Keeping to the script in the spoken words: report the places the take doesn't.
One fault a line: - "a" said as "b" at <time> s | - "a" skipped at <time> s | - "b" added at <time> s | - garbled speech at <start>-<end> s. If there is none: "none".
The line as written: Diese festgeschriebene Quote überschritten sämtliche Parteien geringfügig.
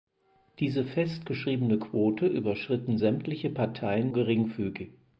none